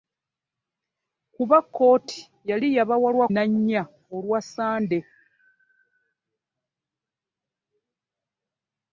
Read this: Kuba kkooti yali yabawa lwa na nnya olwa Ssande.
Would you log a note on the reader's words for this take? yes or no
no